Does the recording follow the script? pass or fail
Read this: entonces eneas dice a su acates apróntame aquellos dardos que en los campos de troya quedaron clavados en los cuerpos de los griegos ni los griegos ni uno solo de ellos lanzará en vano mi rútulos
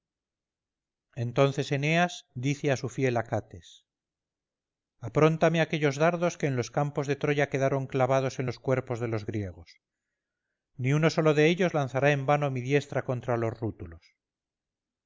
fail